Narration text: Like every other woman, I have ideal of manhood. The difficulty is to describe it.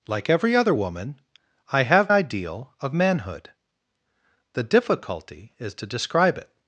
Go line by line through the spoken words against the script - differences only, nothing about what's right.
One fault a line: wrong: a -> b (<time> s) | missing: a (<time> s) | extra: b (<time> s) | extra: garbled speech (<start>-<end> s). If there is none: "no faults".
no faults